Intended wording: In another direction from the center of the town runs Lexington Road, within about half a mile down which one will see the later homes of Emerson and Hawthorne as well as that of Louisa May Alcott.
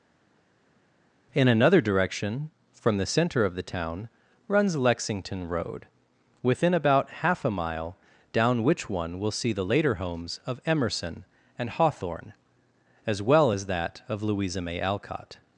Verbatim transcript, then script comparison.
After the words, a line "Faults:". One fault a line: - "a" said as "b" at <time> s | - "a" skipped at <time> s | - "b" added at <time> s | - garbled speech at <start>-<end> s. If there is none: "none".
In another direction from the center of the town runs Lexington Road, within about half a mile down which one will see the later homes of Emerson and Hawthorne as well as that of Louisa May Alcott.
Faults:
none